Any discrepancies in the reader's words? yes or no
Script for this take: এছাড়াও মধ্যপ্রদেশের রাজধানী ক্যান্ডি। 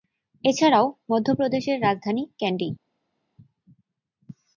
no